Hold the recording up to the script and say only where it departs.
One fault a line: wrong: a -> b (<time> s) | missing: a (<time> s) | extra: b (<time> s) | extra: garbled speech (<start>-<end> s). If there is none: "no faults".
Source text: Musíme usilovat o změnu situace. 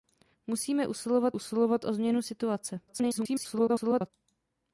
extra: usilovat (1.3 s)
extra: garbled speech (2.9-4.1 s)